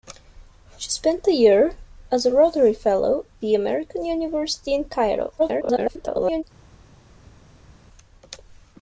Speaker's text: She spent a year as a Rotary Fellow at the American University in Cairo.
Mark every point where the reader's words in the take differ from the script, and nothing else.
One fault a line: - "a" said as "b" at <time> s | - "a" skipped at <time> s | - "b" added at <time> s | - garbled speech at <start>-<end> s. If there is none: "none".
- "at" skipped at 3.3 s
- garbled speech at 5.4-6.4 s